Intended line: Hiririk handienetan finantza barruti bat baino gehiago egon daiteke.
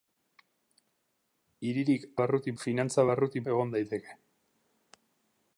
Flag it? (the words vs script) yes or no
yes